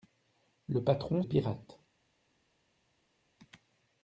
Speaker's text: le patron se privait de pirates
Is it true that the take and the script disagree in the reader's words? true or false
true